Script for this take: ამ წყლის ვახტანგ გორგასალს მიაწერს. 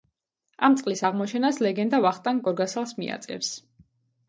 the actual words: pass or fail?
fail